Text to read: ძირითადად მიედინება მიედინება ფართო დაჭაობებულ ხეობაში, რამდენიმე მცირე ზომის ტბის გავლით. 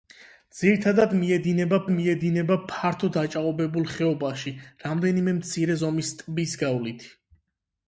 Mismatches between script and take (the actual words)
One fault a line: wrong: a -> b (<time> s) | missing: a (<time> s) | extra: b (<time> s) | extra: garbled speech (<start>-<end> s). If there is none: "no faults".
no faults